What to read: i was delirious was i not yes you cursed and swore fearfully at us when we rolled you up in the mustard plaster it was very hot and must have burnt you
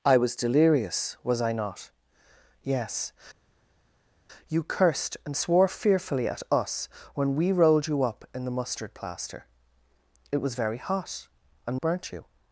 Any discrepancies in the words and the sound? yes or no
yes